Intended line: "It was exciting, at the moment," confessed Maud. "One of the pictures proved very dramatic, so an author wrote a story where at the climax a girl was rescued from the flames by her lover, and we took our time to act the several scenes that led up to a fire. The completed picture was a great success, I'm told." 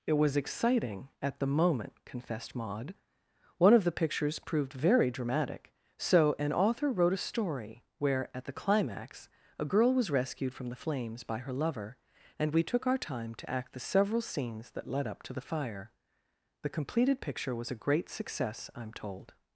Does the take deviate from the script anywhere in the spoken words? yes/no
yes